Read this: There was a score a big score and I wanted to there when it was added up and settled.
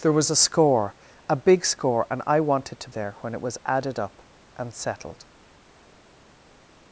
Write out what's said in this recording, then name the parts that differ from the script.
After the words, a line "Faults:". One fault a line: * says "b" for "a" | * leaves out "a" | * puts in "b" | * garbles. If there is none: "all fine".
There was a score a big score and I wanted to there when it was added up and settled.
Faults:
all fine